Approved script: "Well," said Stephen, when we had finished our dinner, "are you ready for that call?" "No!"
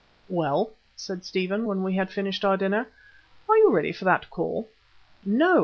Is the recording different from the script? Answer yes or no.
no